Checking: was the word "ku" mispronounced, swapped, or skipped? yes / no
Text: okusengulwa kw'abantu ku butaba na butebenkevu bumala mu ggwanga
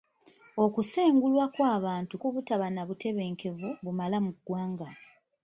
no